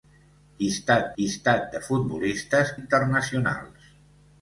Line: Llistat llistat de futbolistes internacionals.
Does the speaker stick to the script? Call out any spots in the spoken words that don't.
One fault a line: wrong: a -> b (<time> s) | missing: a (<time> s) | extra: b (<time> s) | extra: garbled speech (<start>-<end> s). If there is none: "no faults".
no faults